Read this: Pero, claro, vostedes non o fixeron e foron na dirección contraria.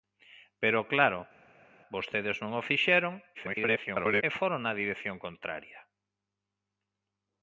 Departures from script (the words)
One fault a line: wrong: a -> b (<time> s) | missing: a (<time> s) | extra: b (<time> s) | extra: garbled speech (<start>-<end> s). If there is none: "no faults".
extra: garbled speech (3.3-4.2 s)